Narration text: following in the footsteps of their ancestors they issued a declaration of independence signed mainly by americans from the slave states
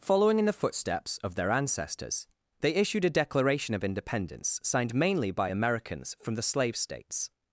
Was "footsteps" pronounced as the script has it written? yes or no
yes